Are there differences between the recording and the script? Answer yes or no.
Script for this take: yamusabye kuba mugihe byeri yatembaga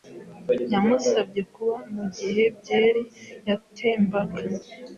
no